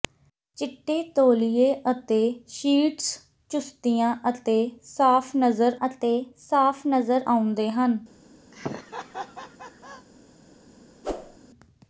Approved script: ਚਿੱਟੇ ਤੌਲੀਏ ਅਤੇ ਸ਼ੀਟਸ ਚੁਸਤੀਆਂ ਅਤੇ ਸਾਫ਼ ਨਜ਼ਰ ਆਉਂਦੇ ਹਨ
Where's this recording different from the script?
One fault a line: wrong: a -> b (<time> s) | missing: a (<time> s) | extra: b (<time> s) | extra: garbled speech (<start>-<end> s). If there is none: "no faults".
extra: ਅਤੇ ਸਾਫ਼ ਨਜ਼ਰ (5.9 s)